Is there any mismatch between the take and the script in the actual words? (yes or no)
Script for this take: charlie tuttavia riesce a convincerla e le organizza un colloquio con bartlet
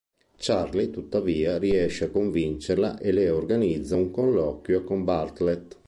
no